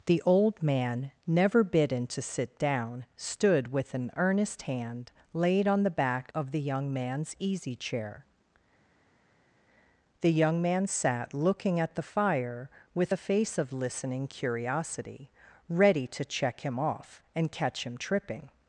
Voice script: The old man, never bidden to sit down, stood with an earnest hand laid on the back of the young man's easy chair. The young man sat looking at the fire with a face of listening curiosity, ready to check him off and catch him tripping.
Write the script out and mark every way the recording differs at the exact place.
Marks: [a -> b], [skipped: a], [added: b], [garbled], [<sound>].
The old man, never bidden to sit down, stood with an earnest hand laid on the back of the young man's easy chair. The young man sat looking at the fire with a face of listening curiosity, ready to check him off and catch him tripping.